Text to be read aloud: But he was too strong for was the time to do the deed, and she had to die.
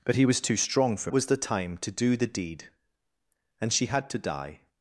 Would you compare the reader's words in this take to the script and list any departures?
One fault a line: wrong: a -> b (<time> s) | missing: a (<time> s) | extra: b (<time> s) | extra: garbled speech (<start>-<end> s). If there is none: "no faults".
no faults